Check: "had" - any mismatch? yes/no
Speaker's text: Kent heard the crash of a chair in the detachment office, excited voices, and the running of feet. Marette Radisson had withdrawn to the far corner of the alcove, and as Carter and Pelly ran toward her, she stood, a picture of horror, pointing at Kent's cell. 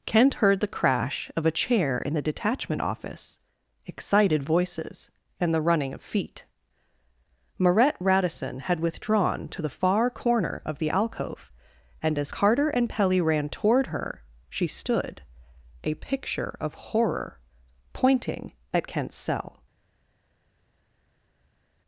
no